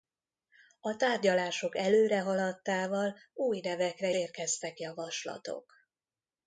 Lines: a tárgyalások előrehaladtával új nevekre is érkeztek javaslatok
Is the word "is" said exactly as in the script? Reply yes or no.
no